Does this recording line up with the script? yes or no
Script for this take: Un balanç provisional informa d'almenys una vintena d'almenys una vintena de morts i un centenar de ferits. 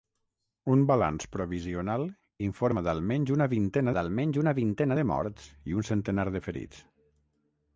yes